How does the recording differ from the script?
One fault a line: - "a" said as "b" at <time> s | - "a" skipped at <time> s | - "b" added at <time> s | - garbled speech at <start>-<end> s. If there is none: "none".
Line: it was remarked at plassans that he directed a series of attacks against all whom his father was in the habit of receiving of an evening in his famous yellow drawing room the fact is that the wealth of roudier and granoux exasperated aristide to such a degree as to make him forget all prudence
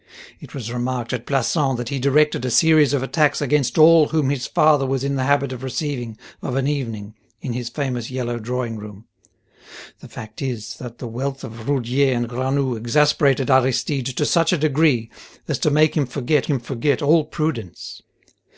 - "him forget" added at 16.5 s